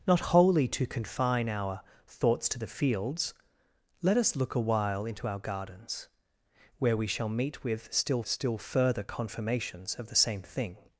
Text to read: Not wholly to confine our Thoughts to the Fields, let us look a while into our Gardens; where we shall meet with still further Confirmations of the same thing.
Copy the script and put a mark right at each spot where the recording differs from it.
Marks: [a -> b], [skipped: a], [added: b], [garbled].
Not wholly to confine our Thoughts to the Fields, let us look a while into our Gardens; where we shall meet with still [added: still] further Confirmations of the same thing.